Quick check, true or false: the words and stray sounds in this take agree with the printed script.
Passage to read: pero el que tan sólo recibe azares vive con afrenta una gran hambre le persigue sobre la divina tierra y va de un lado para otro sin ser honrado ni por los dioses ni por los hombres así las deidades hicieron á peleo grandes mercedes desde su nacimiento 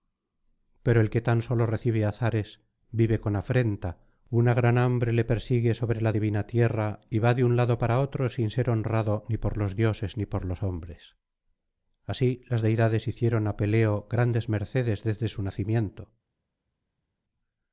true